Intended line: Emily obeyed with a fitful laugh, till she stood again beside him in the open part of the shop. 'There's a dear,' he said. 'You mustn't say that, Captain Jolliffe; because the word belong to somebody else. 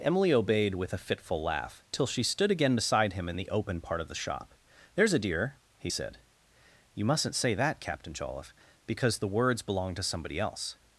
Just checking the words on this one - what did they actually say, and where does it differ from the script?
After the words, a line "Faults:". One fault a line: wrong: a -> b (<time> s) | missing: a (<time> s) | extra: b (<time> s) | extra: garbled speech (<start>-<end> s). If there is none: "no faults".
Emily obeyed with a fitful laugh, till she stood again beside him in the open part of the shop. 'There's a dear,' he said. 'You mustn't say that, Captain Jolliffe; because the words belong to somebody else.
Faults:
wrong: word -> words (9.3 s)